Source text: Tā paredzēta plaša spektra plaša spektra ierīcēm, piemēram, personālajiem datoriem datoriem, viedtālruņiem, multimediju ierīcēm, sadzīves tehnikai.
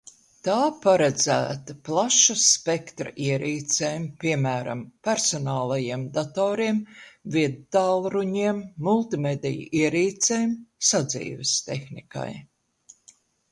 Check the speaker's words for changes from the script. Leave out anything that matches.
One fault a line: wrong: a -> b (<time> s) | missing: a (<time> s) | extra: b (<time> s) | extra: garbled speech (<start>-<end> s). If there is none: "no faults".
missing: plaša spektra (3.1 s)
missing: datoriem (6.8 s)